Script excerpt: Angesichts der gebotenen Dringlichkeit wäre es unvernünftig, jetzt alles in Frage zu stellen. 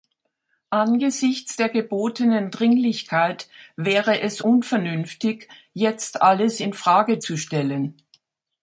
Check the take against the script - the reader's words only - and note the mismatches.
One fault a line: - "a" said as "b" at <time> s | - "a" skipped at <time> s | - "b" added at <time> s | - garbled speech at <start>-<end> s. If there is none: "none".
none